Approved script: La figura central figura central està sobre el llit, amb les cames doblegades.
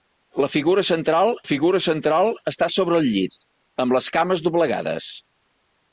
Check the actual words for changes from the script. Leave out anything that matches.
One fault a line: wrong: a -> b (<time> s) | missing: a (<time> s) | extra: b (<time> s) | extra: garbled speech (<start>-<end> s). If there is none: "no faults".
no faults